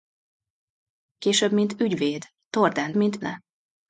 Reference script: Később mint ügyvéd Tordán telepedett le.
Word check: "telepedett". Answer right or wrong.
wrong